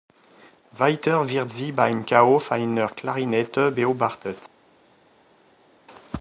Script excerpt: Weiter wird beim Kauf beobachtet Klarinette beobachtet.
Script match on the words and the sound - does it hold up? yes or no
no